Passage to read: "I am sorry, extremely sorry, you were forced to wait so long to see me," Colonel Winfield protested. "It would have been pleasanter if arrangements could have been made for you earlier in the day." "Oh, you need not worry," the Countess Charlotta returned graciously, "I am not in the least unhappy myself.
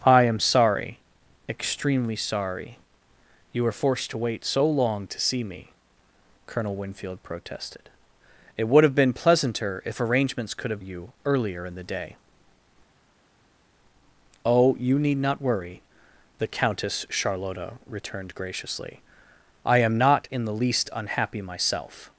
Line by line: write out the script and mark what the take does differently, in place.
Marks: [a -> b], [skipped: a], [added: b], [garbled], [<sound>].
"I am sorry, extremely sorry, you were forced to wait so long to see me," Colonel Winfield protested. "It would have been pleasanter if arrangements could have [skipped: been made for] you earlier in the day." "Oh, you need not worry," the Countess Charlotta returned graciously, "I am not in the least unhappy myself.